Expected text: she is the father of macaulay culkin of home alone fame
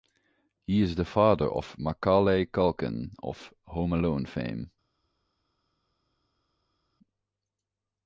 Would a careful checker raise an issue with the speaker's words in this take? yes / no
yes